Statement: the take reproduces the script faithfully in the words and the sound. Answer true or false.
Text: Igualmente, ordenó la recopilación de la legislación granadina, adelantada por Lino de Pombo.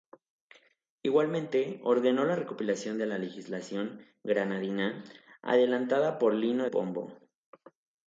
false